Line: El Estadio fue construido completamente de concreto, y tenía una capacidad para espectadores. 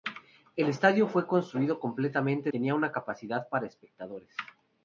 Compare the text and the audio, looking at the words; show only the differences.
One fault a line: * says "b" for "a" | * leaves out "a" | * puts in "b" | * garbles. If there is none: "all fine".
* leaves out "de concreto y"